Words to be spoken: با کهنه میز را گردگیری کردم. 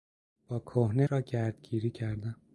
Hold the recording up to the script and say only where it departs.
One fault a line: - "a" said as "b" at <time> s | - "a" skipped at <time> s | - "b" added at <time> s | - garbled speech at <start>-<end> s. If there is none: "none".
- "میز" skipped at 1.1 s